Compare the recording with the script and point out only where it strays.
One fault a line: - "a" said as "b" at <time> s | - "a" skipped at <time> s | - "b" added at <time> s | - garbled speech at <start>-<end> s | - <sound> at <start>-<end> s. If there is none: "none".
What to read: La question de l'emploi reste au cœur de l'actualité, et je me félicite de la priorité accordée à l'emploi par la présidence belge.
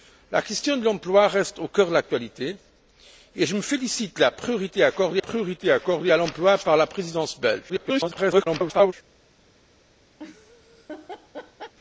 - "priorité accordée" added at 5.2 s
- garbled speech at 7.7-8.9 s
- laugh at 10.2-11.7 s